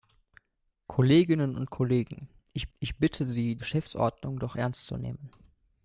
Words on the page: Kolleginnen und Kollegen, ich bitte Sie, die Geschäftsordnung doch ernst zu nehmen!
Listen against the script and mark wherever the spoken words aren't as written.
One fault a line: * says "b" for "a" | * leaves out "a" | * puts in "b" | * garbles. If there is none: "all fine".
* puts in "ich"
* leaves out "die"